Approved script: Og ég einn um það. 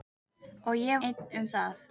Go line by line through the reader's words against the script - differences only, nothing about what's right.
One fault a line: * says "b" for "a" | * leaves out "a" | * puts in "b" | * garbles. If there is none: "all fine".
all fine